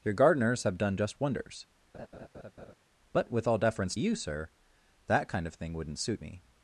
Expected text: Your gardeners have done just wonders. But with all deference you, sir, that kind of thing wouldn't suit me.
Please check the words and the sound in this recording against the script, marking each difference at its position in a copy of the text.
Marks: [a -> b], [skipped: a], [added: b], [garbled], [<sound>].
Your gardeners have done just wonders. [laugh] But with all deference you, sir, that kind of thing wouldn't suit me.